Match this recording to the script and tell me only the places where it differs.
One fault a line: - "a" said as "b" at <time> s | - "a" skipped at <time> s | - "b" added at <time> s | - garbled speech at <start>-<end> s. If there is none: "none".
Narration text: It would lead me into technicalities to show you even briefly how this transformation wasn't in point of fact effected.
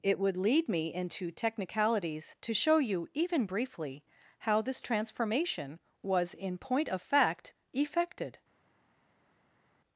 - "wasn't" said as "was" at 6.0 s